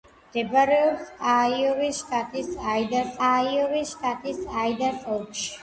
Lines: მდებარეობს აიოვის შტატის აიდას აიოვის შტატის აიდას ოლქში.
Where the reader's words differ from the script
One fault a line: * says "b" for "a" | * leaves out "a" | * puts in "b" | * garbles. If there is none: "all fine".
all fine